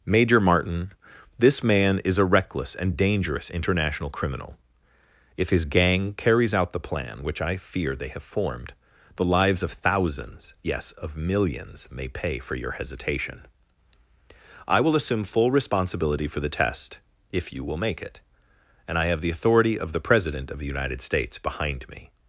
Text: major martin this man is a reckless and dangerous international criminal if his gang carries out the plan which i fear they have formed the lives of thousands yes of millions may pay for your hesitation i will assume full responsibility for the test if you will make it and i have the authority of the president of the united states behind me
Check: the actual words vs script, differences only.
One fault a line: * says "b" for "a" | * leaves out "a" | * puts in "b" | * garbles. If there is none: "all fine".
all fine